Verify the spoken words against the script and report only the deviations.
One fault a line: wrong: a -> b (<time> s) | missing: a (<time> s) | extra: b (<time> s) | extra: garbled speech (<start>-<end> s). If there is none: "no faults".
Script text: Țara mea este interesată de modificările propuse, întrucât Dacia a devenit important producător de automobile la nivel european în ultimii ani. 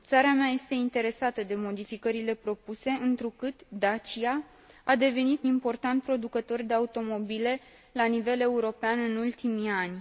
no faults